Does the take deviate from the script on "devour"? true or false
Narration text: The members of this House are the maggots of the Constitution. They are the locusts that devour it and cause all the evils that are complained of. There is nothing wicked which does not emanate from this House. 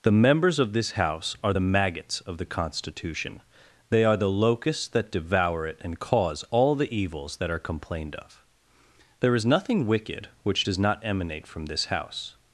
false